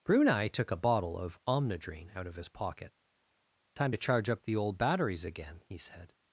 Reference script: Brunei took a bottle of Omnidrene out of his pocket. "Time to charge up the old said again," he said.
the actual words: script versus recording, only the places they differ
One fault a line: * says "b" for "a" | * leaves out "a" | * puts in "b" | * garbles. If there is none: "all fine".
* says "batteries" for "said"